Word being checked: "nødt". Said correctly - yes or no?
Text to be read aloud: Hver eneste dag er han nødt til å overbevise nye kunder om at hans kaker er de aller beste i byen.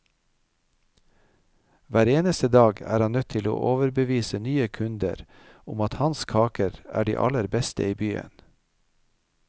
yes